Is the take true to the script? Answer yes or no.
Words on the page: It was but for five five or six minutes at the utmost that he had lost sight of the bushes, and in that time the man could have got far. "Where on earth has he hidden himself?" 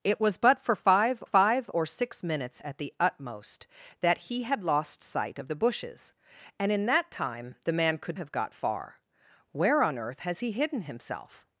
yes